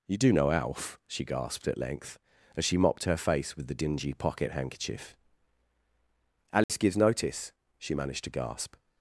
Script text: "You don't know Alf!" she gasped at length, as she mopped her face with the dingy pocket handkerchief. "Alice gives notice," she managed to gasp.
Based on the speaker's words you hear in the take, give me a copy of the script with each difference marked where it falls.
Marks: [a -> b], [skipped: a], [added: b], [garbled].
"You [don't -> do] know Alf!" she gasped at length, as she mopped her face with the dingy pocket handkerchief. "Alice gives notice," she managed to gasp.